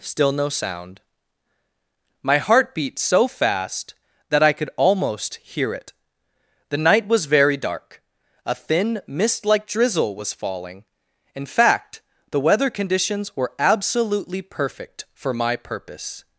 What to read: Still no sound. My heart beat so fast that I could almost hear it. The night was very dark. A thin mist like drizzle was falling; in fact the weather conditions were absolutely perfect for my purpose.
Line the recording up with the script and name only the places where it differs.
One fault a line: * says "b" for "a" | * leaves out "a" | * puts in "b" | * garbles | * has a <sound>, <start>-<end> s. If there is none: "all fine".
all fine